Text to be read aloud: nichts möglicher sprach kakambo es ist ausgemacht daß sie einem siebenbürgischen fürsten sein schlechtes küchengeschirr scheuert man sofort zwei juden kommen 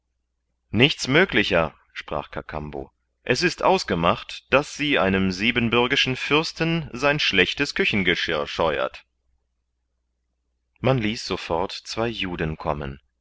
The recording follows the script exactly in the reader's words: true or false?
false